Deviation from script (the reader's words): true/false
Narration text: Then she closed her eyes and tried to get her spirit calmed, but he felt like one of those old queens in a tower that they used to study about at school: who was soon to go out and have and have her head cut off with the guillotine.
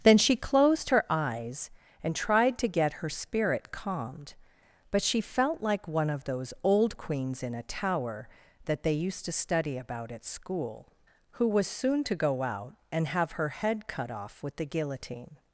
true